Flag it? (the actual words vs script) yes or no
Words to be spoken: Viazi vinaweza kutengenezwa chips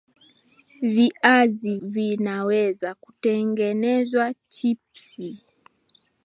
no